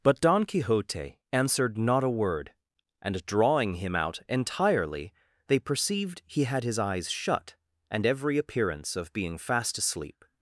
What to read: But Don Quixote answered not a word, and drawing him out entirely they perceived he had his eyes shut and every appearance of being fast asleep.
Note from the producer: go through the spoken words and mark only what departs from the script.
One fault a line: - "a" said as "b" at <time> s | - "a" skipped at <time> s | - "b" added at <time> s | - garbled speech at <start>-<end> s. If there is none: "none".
none